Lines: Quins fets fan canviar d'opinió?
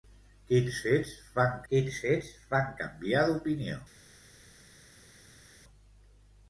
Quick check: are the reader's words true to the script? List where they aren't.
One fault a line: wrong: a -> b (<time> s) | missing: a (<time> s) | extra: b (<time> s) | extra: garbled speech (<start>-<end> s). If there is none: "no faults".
extra: quins fets fan (1.7 s)